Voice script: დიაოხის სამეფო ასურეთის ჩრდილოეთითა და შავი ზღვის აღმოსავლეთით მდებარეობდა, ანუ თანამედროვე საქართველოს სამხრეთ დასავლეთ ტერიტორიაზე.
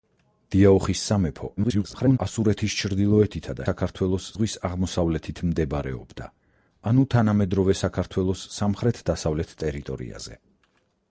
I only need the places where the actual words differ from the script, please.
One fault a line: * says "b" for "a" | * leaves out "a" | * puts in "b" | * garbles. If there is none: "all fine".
* garbles
* says "საქართველოს" for "შავი"